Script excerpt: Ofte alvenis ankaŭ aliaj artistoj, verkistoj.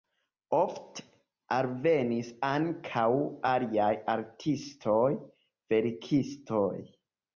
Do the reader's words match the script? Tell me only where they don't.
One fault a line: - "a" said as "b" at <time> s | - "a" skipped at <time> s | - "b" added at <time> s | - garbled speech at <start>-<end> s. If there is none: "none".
none